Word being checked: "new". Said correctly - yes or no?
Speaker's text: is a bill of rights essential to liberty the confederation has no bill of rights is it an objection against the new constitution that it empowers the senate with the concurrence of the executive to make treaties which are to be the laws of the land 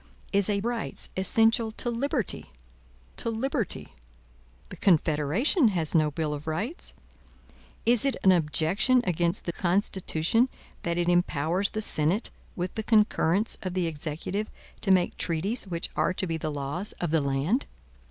no